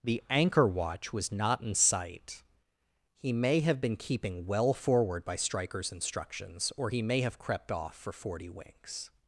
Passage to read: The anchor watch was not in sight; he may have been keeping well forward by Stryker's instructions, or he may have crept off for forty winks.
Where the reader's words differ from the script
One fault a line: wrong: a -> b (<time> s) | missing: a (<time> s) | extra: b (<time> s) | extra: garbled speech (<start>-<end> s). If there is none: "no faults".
no faults